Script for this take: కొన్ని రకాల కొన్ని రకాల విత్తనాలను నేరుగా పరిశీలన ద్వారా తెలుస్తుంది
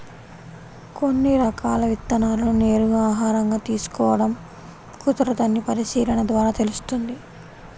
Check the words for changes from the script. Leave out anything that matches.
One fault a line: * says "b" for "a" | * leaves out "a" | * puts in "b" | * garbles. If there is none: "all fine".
* says "విత్తనాలను నేరుగా ఆహారంగా తీసుకోడం కుదరదని" for "కొన్ని రకాల విత్తనాలను నేరుగా"